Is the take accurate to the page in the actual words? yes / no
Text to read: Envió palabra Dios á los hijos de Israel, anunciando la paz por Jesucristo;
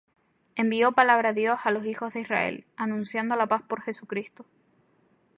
yes